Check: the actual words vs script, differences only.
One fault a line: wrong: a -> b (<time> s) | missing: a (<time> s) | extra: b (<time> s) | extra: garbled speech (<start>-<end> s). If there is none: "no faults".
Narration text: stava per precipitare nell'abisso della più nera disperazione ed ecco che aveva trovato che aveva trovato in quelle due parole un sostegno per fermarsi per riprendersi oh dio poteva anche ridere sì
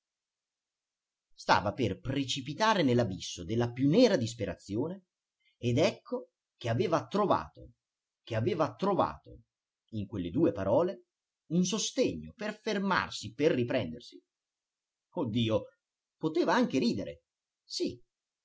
no faults